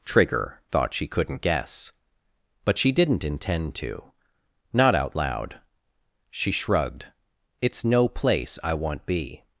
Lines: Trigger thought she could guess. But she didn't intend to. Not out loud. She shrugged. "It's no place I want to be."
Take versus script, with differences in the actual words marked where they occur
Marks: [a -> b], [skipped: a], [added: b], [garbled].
Trigger thought she [could -> couldn't] guess. But she didn't intend to. Not out loud. She shrugged. "It's no place I want [skipped: to] be."